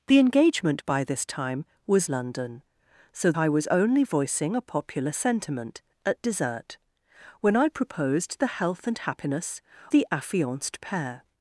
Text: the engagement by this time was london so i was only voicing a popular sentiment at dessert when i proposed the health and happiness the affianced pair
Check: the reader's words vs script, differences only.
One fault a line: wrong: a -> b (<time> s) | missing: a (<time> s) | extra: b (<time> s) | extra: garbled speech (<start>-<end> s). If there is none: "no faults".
no faults